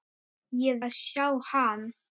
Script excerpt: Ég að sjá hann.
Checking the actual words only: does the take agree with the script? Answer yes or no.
yes